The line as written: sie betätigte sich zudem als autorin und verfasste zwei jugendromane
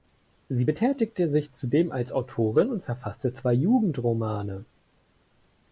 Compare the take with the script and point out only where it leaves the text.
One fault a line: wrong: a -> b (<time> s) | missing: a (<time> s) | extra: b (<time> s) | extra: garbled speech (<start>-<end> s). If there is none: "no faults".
no faults